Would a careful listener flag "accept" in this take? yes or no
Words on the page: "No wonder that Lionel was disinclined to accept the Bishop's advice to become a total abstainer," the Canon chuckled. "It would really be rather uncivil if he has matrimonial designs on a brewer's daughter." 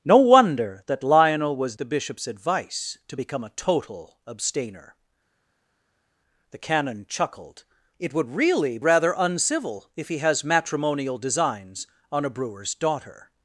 yes